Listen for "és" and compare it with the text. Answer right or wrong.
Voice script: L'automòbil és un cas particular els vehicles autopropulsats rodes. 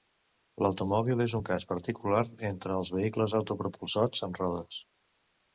right